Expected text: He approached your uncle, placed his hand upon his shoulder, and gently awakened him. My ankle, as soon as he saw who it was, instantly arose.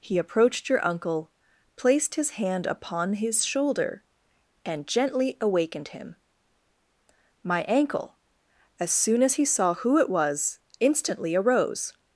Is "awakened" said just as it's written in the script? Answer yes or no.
yes